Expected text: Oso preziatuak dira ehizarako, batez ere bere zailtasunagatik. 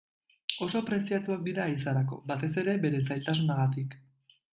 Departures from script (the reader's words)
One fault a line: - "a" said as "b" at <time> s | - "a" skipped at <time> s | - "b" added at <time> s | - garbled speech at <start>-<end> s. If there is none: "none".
none